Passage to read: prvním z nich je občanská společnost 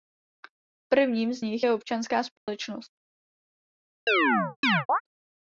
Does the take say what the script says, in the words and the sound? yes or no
no